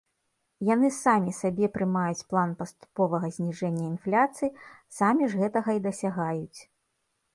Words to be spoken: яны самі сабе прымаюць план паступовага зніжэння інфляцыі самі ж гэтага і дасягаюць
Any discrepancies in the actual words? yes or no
no